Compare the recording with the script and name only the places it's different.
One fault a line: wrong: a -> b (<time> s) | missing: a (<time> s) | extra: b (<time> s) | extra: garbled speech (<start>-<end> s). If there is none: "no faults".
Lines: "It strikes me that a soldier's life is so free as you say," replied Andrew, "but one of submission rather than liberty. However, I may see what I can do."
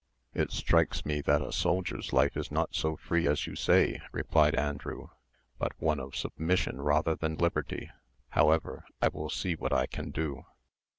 extra: not (2.5 s)
wrong: may -> will (9.1 s)